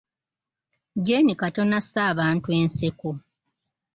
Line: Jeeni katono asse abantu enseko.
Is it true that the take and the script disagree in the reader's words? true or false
false